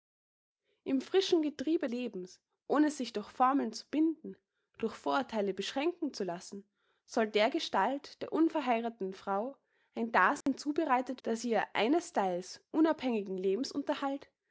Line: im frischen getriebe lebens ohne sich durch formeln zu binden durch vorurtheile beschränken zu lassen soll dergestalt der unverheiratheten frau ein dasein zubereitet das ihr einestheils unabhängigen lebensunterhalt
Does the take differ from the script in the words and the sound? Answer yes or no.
yes